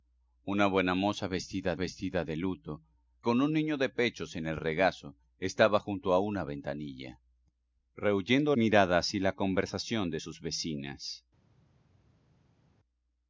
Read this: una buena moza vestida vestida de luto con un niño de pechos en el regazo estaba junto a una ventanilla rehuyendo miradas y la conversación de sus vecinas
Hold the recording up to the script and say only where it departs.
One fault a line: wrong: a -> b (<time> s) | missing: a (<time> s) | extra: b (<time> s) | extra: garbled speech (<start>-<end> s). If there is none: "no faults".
no faults